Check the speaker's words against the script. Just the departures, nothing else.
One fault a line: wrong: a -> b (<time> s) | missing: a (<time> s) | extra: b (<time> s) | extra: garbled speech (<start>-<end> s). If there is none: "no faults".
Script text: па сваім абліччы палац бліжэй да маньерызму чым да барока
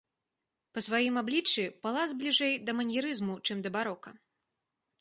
no faults